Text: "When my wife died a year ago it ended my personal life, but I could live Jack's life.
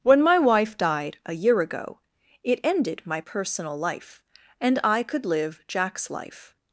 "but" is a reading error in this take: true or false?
true